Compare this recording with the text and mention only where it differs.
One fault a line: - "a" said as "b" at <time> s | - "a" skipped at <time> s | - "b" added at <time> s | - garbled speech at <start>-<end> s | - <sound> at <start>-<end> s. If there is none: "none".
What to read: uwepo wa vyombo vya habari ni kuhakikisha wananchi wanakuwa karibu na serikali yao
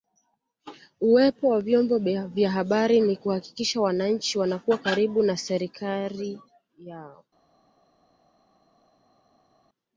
none